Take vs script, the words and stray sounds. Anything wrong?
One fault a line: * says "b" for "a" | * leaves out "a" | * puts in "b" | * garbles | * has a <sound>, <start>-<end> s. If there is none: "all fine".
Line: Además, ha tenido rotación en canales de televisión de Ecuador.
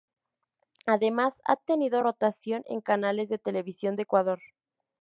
all fine